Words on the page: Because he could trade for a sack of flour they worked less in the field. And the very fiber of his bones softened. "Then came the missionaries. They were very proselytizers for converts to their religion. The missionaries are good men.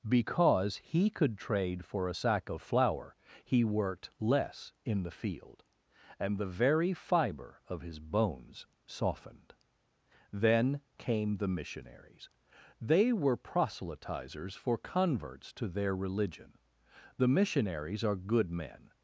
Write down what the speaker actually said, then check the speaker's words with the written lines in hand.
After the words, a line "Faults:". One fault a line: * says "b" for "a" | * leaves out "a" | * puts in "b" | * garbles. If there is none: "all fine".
Because he could trade for a sack of flour he worked less in the field. And the very fiber of his bones softened. "Then came the missionaries. They were proselytizers for converts to their religion. The missionaries are good men.
Faults:
* says "he" for "they"
* leaves out "very"